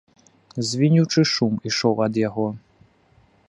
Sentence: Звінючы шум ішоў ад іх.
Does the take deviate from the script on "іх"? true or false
true